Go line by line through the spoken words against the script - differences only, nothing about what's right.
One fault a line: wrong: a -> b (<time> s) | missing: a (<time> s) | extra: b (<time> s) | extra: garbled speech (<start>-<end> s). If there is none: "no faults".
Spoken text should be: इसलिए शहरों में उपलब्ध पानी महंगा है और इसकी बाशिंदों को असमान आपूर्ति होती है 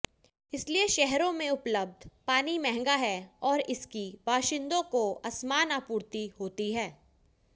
no faults